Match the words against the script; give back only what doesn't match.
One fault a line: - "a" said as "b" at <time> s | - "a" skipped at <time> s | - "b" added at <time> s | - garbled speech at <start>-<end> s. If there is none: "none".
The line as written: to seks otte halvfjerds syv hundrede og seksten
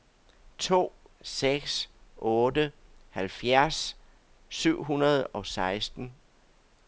none